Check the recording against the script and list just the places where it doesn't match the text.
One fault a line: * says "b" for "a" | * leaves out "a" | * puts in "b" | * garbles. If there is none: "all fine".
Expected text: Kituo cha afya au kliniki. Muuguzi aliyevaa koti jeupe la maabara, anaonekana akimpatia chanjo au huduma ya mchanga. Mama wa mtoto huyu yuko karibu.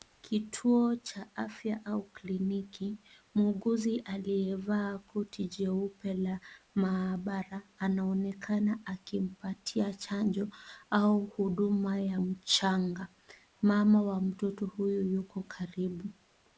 all fine